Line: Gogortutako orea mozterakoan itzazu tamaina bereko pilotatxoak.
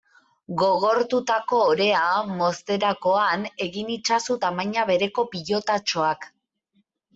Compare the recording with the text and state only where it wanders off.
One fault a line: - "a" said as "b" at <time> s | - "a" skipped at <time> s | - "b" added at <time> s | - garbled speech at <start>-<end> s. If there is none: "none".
- "egin" added at 3.7 s